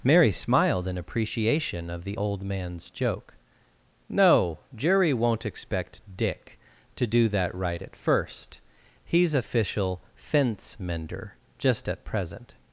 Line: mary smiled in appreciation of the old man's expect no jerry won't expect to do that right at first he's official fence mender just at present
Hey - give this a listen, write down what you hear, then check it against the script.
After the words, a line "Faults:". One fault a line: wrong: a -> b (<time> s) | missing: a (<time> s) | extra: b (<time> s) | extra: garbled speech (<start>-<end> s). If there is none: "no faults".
mary smiled in appreciation of the old man's joke no jerry won't expect dick to do that right at first he's official fence mender just at present
Faults:
wrong: expect -> joke (2.9 s)
extra: dick (6.2 s)